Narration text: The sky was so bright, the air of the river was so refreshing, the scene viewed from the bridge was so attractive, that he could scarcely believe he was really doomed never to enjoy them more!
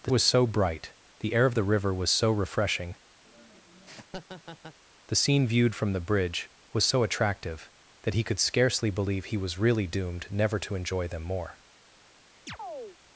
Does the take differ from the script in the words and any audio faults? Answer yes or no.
yes